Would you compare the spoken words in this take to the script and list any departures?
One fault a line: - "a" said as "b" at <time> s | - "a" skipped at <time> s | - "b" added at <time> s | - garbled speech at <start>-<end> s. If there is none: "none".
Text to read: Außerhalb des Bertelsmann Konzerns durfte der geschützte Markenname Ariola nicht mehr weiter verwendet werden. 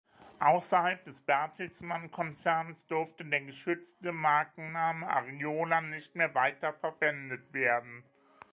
none